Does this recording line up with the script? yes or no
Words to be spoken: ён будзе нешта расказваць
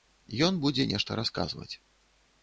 yes